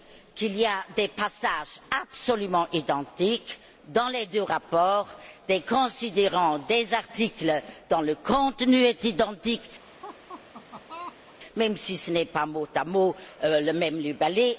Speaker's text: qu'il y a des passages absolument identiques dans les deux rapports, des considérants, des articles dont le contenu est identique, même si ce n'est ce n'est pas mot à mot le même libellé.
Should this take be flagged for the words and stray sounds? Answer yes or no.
yes